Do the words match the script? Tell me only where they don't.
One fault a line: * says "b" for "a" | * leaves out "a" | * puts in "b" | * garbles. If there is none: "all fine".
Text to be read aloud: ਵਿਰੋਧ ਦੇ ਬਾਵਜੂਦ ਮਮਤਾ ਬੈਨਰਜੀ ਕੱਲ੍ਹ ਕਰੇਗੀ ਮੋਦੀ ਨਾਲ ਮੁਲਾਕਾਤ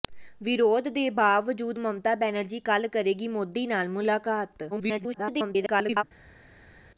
* garbles